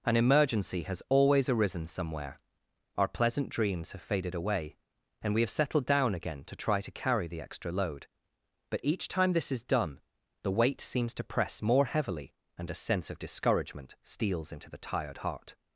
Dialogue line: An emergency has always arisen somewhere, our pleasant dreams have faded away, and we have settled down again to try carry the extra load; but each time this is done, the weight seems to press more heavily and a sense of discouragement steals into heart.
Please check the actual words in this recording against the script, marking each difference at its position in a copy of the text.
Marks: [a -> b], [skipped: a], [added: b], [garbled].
An emergency has always arisen somewhere, our pleasant dreams have faded away, and we have settled down again to try [added: to] carry the extra load; but each time this is done, the weight seems to press more heavily and a sense of discouragement steals into [added: the tired] heart.